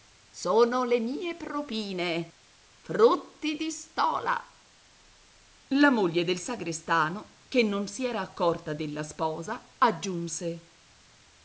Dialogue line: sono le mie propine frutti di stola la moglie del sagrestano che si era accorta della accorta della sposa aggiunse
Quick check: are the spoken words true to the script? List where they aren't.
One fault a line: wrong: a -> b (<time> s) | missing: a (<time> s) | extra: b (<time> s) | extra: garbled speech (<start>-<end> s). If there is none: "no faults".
extra: non (7.6 s)
missing: accorta della (9.0 s)